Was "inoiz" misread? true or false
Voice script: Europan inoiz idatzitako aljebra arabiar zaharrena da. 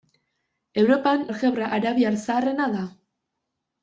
true